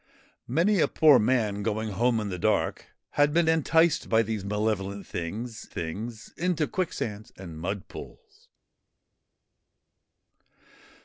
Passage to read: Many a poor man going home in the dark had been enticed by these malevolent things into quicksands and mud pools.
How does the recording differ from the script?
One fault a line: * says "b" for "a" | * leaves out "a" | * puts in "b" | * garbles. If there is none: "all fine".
* puts in "things"